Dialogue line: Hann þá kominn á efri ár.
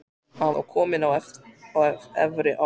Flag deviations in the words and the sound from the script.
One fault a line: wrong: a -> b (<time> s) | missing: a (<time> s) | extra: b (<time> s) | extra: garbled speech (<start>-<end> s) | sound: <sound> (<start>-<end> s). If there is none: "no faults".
no faults